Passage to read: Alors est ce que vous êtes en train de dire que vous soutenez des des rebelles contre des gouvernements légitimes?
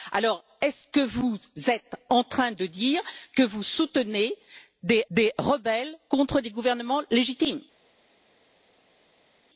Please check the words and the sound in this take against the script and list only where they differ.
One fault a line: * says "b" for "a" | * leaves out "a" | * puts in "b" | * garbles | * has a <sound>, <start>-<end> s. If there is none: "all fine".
all fine